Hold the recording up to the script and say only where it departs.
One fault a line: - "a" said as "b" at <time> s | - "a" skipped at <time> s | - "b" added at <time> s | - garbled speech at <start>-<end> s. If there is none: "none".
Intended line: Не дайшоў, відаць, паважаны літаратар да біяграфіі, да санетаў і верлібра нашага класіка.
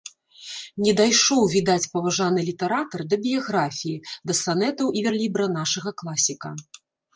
none